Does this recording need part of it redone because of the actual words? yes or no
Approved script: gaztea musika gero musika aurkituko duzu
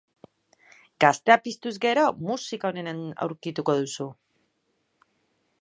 yes